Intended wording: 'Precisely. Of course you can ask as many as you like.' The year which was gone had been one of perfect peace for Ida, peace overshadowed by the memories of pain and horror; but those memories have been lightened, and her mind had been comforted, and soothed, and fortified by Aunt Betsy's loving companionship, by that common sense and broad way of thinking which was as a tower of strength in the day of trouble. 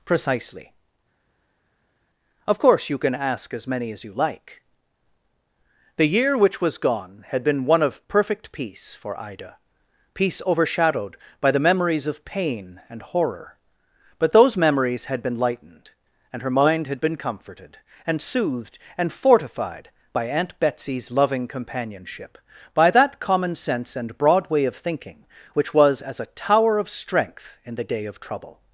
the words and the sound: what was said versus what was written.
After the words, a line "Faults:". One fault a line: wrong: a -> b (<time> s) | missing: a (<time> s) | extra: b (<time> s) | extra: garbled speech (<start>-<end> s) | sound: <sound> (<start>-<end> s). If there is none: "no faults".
'Precisely. Of course you can ask as many as you like.' The year which was gone had been one of perfect peace for Ida, peace overshadowed by the memories of pain and horror; but those memories had been lightened, and her mind had been comforted, and soothed, and fortified by Aunt Betsy's loving companionship, by that common sense and broad way of thinking which was as a tower of strength in the day of trouble.
Faults:
wrong: have -> had (15.0 s)